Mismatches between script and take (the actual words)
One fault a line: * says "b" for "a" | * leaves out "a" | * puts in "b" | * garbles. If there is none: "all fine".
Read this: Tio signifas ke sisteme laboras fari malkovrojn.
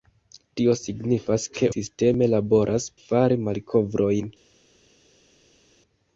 all fine